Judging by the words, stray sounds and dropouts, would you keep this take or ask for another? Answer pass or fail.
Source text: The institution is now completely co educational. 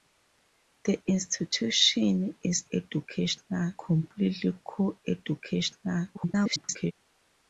fail